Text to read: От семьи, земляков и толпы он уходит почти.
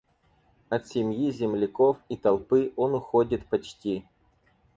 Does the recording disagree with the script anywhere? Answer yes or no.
no